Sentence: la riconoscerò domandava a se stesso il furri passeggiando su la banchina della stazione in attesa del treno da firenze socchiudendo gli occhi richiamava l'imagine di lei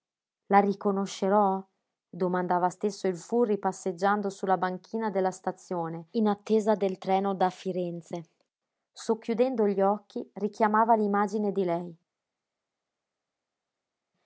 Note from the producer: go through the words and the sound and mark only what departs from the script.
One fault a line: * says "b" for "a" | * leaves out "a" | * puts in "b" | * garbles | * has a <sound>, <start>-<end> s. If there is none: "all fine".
* leaves out "se"